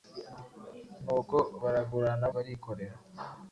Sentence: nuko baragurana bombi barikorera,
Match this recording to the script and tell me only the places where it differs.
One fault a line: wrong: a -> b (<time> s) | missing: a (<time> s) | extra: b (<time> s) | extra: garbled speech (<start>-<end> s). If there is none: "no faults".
missing: bombi (2.2 s)